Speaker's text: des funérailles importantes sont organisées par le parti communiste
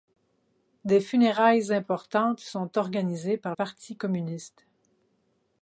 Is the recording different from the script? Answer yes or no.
yes